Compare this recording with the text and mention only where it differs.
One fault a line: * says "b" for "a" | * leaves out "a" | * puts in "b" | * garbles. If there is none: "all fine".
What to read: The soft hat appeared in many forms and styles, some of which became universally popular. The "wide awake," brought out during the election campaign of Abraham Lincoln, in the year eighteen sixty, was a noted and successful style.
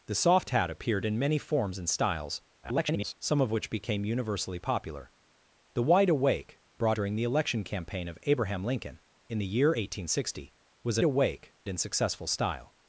* garbles
* leaves out "out"
* says "awake" for "noted"